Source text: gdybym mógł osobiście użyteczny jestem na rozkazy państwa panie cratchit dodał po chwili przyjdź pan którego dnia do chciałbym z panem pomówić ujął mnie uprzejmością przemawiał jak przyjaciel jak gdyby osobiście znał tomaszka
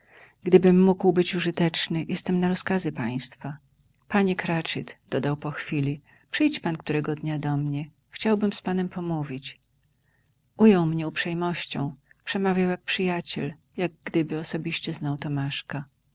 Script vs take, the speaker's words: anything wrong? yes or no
yes